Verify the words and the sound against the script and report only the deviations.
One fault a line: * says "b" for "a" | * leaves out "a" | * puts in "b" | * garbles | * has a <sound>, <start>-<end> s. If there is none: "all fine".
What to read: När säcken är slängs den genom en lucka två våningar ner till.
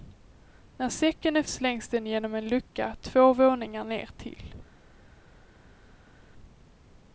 all fine